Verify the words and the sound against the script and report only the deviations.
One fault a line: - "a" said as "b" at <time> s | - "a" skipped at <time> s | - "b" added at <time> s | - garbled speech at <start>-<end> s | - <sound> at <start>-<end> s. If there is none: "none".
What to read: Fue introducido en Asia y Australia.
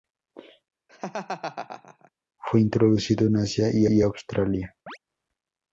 - laugh at 0.9-2.1 s
- "y" added at 3.9 s
- chirp at 4.9-5.0 s